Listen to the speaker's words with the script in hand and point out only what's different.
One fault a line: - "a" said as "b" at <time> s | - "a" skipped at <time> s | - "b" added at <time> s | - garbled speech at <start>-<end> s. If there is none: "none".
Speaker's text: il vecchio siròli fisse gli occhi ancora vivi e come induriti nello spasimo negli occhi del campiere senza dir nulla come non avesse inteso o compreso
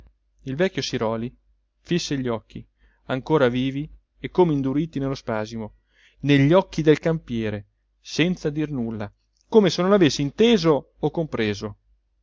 - "se" added at 9.7 s